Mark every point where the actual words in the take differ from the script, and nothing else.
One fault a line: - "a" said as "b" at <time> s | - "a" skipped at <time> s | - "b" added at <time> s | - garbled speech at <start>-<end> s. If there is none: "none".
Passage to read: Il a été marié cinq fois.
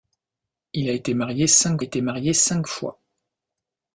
- "été marié cinq" added at 1.8 s